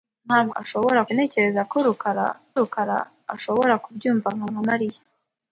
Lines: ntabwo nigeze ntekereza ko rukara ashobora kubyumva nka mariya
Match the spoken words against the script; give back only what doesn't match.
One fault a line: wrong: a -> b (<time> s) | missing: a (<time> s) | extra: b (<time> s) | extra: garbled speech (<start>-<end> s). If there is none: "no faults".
wrong: nigeze -> ashobora (0.6 s)
extra: rukara (2.6 s)
extra: nka (4.5 s)